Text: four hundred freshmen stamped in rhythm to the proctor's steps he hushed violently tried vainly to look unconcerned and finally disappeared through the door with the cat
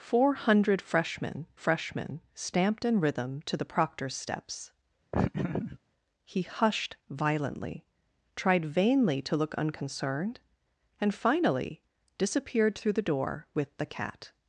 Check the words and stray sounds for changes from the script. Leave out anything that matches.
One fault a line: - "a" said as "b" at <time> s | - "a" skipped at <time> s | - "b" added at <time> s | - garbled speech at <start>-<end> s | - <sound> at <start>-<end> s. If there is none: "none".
- "freshmen" added at 1.5 s
- laugh at 5.1-5.8 s